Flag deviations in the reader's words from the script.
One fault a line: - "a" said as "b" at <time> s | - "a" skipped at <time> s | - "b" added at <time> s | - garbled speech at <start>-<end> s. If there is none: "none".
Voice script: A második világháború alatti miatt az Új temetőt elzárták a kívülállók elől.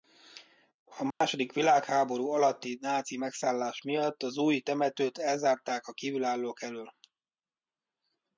- "náci megszállás" added at 2.8 s